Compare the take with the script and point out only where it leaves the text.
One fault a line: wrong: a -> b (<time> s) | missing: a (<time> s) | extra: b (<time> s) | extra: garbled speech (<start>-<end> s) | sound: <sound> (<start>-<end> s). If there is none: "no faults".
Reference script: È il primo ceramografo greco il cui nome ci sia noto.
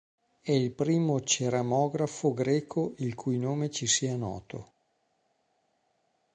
no faults